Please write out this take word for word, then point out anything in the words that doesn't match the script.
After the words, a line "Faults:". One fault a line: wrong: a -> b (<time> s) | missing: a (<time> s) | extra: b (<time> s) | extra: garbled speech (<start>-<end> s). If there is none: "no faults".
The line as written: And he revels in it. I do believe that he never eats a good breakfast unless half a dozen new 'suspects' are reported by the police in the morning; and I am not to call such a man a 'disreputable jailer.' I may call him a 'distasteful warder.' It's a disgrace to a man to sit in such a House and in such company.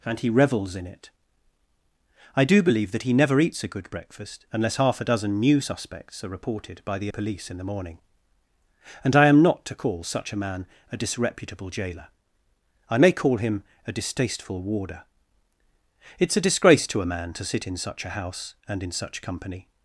And he revels in it. I do believe that he never eats a good breakfast unless half a dozen new 'suspects' are reported by the police in the morning; and I am not to call such a man a 'disreputable jailer.' I may call him a 'distasteful warder.' It's a disgrace to a man to sit in such a House and in such company.
Faults:
no faults